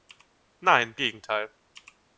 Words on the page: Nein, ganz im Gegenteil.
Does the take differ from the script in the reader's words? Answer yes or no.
yes